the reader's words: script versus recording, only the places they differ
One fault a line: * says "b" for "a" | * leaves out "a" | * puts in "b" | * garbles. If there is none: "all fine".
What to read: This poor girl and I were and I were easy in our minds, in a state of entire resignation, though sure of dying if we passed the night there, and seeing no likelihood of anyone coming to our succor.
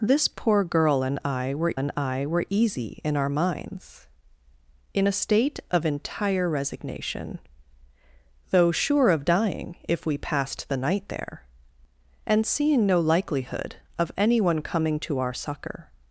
all fine